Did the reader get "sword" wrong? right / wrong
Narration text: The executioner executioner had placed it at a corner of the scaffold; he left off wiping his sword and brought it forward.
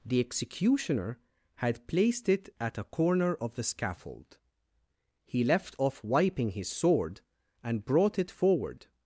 right